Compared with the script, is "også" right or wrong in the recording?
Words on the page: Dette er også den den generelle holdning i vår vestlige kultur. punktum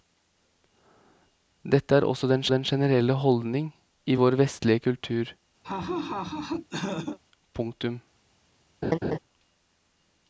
right